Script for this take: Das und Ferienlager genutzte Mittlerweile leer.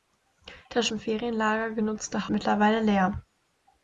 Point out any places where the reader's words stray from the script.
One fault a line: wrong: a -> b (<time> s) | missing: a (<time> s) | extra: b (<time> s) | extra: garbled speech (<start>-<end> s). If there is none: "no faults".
no faults